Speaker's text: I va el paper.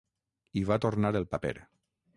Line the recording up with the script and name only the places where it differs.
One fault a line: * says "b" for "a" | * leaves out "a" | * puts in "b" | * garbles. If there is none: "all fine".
* puts in "tornar"